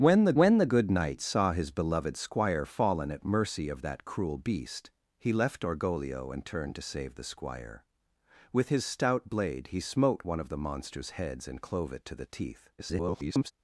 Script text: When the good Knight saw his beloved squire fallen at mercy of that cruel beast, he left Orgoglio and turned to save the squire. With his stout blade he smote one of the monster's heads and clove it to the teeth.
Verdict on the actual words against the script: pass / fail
fail